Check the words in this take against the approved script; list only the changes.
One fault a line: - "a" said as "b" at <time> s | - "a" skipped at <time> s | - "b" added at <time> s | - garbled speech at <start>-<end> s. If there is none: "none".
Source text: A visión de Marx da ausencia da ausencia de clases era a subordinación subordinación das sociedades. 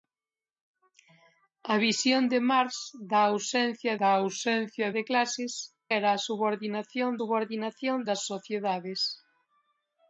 none